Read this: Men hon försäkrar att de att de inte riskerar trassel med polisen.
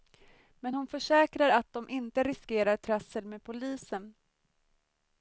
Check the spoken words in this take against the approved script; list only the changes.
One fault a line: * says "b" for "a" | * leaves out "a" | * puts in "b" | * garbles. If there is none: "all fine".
* leaves out "att de"